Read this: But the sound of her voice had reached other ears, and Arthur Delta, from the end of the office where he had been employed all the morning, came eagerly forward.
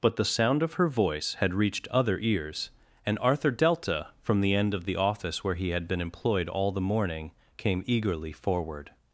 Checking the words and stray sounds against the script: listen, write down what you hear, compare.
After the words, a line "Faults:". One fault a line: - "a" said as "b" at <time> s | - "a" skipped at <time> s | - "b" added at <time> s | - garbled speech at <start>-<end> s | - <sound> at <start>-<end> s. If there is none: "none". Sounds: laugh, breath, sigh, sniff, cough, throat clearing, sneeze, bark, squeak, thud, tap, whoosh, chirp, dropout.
But the sound of her voice had reached other ears, and Arthur Delta, from the end of the office where he had been employed all the morning, came eagerly forward.
Faults:
none